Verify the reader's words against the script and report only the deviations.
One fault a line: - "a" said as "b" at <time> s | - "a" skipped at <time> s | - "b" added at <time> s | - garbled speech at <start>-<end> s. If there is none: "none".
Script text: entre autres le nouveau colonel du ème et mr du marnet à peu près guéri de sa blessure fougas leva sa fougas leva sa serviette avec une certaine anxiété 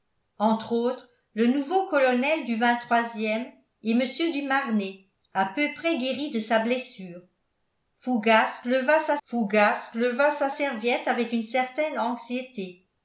none